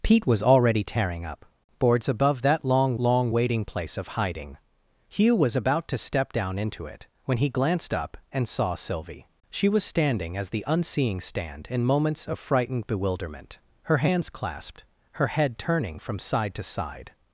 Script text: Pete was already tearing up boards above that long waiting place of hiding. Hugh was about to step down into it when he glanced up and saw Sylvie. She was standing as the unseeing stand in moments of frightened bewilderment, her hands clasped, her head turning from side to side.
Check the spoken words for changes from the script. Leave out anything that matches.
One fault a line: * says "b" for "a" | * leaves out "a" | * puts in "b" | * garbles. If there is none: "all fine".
* puts in "long"